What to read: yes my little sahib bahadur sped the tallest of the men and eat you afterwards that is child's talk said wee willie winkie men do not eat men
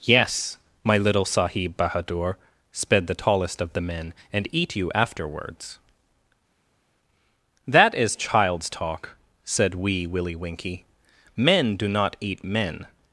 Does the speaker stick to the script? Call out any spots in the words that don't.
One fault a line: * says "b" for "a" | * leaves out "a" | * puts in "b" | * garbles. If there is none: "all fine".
all fine